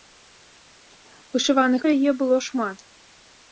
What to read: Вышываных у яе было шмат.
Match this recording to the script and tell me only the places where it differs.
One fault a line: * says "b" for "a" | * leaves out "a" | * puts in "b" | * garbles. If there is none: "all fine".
all fine